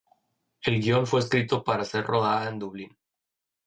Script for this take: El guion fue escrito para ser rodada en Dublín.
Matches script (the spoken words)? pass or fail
pass